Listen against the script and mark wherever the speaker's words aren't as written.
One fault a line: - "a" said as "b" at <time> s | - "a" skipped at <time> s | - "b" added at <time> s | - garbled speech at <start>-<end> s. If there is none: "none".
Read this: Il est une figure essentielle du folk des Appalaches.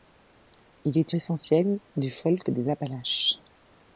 - "une figure" skipped at 1.1 s